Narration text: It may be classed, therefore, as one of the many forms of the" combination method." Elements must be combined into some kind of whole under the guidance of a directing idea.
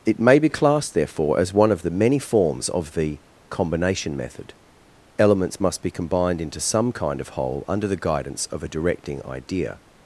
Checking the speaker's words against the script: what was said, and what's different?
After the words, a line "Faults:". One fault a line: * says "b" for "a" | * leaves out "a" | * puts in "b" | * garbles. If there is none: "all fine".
It may be classed, therefore, as one of the many forms of the" combination method." Elements must be combined into some kind of whole under the guidance of a directing idea.
Faults:
all fine